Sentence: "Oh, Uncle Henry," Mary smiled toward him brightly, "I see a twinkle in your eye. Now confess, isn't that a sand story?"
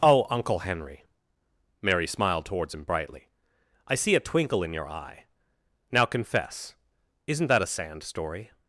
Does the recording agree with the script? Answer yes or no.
no